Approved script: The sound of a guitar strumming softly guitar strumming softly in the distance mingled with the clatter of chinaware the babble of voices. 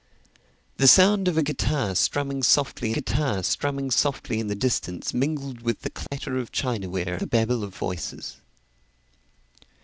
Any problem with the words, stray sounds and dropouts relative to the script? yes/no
yes